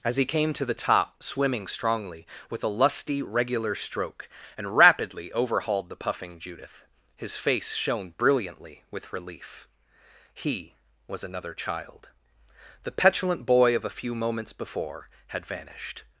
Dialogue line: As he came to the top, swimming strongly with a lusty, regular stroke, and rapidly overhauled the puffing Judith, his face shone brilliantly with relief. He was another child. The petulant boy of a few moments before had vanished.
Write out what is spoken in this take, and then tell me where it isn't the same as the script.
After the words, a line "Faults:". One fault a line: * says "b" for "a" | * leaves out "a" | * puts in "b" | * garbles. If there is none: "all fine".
As he came to the top, swimming strongly with a lusty, regular stroke, and rapidly overhauled the puffing Judith, his face shone brilliantly with relief. He was another child. The petulant boy of a few moments before had vanished.
Faults:
all fine